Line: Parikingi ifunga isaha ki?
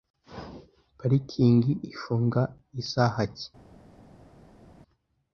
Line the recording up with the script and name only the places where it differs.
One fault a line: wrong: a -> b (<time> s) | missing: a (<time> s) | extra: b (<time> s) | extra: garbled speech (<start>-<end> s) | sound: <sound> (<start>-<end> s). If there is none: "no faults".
no faults